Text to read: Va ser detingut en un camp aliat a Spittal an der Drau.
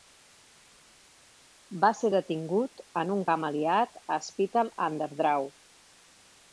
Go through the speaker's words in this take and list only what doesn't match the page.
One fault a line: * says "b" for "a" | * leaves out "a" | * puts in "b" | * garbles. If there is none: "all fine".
all fine